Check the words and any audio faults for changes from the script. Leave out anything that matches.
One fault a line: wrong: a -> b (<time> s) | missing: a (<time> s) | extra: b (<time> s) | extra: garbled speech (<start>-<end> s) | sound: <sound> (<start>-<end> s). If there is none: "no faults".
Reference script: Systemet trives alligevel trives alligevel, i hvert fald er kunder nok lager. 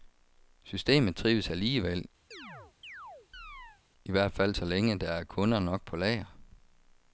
missing: trives alligevel (2.0 s)
sound: chirp (2.3-3.8 s)
extra: så længe der (4.5 s)
extra: på (5.9 s)